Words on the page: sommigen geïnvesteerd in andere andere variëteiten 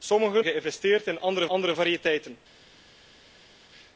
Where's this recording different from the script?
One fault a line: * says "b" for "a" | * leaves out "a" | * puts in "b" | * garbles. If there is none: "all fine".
all fine